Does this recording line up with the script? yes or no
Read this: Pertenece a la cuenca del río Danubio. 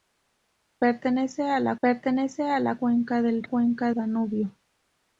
no